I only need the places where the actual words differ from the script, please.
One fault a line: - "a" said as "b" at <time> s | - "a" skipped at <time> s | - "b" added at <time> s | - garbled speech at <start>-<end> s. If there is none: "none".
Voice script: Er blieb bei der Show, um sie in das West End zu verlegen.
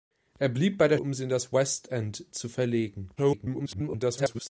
- "Show" skipped at 1.0 s
- garbled speech at 3.2-4.5 s